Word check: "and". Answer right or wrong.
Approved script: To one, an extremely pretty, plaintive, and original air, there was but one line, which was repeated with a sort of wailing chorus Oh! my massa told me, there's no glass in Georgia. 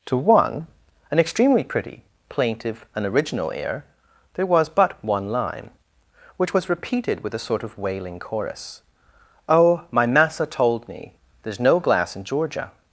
right